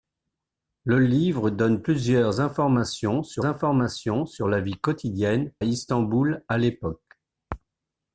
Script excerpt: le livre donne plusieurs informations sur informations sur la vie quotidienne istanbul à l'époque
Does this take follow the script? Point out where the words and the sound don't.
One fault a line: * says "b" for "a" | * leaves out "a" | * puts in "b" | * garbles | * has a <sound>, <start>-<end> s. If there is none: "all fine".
all fine